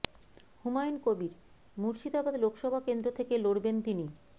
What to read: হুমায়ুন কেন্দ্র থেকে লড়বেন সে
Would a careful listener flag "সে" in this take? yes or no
yes